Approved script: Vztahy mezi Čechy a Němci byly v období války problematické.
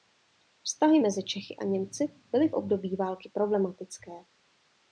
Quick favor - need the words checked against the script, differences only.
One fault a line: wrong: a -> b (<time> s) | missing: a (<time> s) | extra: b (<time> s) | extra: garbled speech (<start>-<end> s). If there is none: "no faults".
no faults